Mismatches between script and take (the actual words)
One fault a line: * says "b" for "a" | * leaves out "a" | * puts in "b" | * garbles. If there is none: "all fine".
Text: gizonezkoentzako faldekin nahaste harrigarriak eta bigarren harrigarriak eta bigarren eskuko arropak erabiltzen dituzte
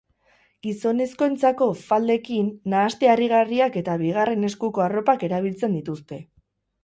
* leaves out "harrigarriak eta bigarren"